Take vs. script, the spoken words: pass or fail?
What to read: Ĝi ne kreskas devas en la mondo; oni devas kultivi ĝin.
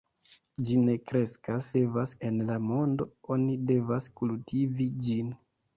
pass